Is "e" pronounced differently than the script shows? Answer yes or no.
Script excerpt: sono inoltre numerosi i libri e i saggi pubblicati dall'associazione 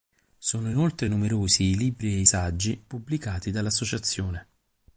no